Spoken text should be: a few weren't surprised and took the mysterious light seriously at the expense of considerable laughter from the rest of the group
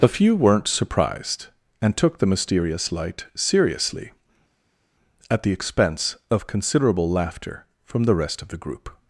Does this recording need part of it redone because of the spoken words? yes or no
no